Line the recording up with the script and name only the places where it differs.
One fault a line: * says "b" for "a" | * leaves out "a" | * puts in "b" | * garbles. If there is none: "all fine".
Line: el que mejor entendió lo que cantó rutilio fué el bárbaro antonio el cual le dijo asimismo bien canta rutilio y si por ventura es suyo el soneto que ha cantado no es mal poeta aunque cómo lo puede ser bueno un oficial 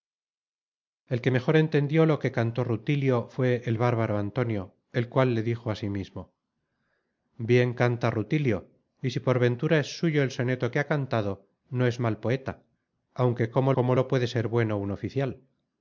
* puts in "cómo"